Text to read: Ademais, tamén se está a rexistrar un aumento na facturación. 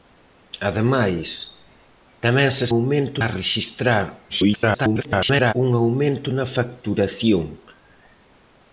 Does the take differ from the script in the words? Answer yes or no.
yes